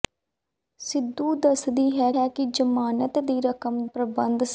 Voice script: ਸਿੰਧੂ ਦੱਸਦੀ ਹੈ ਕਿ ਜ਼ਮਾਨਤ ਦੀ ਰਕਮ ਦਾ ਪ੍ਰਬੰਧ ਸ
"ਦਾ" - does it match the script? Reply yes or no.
no